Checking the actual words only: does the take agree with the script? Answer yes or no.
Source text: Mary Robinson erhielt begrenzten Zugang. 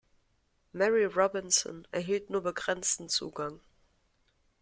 no